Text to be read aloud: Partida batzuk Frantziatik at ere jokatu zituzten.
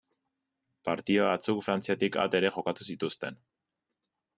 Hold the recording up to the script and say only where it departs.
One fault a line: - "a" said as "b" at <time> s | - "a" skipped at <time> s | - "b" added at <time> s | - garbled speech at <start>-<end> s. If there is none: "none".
none